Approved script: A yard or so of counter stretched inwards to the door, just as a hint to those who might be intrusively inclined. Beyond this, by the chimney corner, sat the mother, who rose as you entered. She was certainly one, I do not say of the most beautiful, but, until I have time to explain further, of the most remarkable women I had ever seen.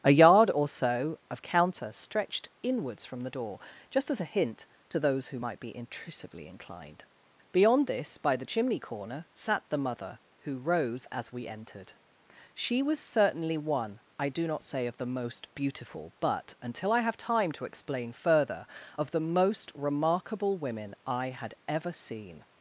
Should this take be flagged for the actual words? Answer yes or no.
yes